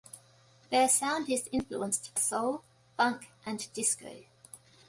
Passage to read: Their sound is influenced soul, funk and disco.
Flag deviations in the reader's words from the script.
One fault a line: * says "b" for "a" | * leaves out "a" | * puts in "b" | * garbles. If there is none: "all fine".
all fine